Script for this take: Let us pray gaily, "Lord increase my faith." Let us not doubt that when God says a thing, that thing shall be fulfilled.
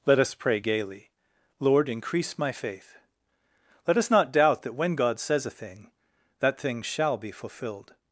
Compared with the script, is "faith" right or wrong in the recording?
right